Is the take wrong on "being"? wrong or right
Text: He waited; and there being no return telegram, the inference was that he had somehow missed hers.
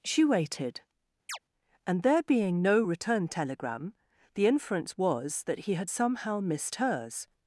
right